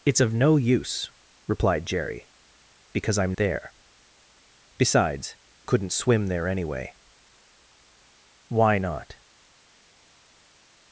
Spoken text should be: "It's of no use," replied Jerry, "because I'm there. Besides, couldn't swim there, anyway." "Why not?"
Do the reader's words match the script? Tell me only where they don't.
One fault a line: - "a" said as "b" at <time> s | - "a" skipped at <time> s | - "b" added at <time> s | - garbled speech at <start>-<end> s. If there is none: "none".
none